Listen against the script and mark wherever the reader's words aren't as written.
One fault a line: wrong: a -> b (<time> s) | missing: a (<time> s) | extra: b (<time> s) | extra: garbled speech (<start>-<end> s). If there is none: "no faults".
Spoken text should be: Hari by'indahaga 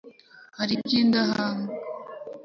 no faults